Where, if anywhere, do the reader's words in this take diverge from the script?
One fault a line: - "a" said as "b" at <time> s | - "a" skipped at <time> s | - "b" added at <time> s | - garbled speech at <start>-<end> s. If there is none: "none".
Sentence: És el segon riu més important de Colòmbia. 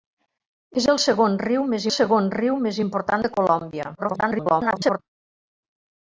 - "segon riu més" added at 1.9 s
- garbled speech at 4.0-5.0 s